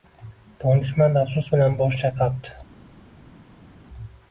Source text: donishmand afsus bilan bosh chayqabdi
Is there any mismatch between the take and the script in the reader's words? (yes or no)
no